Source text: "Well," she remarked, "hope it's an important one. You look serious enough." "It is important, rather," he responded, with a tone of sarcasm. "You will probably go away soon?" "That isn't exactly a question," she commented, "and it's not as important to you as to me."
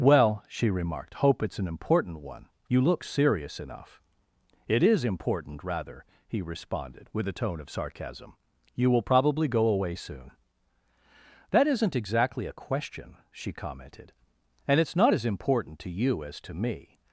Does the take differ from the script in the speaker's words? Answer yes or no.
no